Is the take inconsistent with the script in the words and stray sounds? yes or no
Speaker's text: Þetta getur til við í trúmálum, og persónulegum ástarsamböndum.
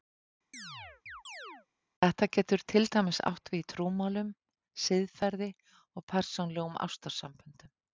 yes